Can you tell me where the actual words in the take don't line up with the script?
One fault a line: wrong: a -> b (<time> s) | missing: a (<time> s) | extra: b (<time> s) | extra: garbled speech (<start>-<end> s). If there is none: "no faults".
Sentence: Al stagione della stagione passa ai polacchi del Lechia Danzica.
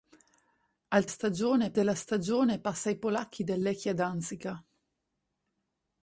no faults